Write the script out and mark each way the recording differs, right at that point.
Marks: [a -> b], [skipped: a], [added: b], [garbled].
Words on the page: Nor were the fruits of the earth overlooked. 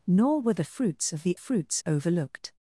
Nor were the fruits of the [earth -> fruits] overlooked.